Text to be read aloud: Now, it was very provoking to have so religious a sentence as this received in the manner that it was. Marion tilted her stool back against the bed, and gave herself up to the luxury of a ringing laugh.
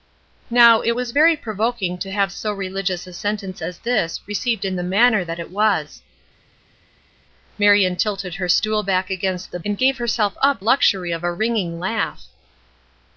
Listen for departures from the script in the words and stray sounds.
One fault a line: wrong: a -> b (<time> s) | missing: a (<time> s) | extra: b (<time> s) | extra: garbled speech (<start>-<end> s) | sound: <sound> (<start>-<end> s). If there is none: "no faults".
missing: bed (9.6 s)
missing: to the (10.6 s)